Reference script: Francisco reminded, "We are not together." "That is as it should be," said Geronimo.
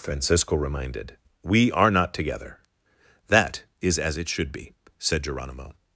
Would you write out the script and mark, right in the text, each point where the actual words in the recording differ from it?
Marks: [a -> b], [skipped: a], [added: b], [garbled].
Francisco reminded, "We are not together." "That is as it should be," said Geronimo.